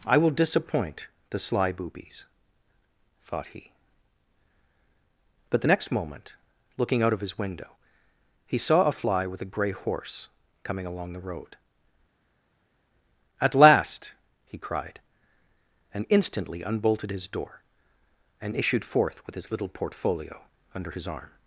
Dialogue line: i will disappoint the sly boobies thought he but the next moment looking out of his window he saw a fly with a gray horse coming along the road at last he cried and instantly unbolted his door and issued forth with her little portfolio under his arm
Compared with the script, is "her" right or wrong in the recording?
wrong